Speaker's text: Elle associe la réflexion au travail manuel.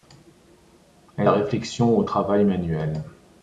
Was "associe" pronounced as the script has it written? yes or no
no